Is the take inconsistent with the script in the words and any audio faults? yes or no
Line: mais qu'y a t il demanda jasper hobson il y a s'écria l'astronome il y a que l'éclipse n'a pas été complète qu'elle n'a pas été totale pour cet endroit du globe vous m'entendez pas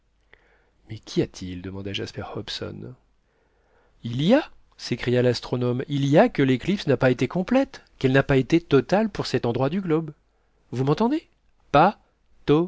no